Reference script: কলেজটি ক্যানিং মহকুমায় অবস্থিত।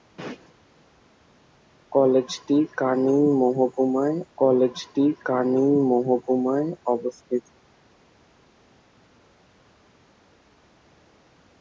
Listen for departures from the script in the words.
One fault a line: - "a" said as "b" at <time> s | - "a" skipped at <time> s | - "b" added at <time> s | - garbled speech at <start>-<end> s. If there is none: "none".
- "কলেজটি ক্যানিং মহকুমায়" added at 4.4 s